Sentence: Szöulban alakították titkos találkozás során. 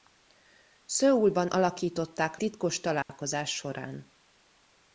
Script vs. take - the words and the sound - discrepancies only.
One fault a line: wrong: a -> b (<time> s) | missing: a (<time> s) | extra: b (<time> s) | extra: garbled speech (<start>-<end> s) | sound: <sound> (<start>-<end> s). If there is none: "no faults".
sound: dropout (3.0-3.1 s)